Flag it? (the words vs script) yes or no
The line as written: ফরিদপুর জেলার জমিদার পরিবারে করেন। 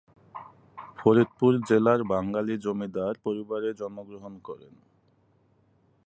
yes